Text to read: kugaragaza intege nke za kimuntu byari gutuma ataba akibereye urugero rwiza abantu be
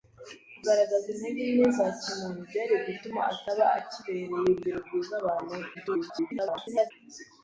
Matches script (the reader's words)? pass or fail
fail